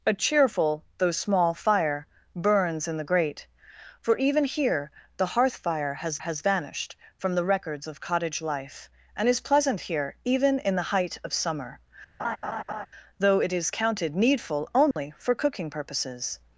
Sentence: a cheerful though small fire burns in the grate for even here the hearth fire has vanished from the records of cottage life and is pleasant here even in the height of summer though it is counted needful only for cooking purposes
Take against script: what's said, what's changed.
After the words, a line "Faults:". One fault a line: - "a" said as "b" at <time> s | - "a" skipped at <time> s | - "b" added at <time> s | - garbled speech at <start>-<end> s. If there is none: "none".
a cheerful though small fire burns in the grate for even here the hearth fire has has vanished from the records of cottage life and is pleasant here even in the height of summer though it is counted needful only for cooking purposes
Faults:
- "has" added at 6.2 s